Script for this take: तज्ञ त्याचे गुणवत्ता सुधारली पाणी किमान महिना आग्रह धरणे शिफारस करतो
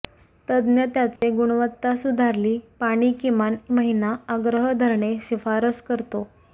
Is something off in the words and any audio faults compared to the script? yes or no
yes